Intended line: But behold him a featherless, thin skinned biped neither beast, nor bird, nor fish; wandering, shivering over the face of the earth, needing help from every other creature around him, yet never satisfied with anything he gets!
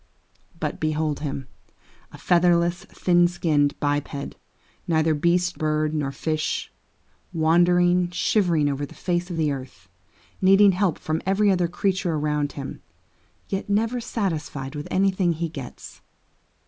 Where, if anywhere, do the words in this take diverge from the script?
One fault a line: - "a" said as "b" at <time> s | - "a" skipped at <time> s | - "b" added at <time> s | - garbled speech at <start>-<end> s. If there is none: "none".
- "nor" skipped at 5.6 s